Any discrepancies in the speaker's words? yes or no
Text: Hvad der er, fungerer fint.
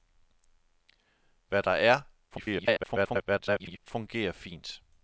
yes